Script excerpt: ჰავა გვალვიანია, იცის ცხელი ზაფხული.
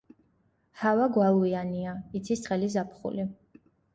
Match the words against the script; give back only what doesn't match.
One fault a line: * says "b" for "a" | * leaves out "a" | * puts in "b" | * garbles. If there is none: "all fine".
all fine